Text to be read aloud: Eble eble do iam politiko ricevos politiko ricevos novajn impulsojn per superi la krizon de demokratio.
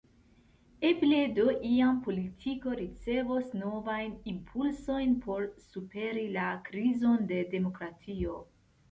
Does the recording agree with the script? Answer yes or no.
no